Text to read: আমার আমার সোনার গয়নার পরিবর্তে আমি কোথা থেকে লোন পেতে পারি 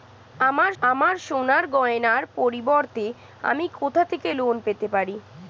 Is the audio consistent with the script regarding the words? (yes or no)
yes